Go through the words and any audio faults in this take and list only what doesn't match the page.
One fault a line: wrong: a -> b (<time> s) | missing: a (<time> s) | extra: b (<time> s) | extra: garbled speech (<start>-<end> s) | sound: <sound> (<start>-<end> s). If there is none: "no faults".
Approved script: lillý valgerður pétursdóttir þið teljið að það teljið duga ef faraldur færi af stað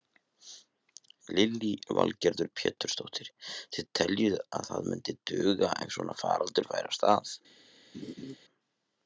wrong: teljið -> myndi (4.9 s)
extra: svona (6.0 s)
sound: laugh (7.9-8.4 s)